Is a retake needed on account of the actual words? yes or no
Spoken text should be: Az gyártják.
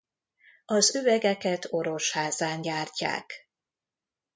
yes